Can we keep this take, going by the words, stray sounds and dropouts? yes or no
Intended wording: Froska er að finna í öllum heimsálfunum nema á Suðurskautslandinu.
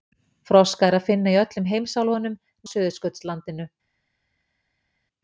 no